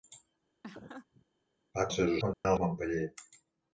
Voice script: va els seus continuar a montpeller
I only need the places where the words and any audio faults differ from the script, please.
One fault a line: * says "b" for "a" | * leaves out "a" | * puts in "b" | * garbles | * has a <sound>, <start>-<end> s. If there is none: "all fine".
* has a laugh, 0.6-1.2 s
* has a dropout, 2.3-2.5 s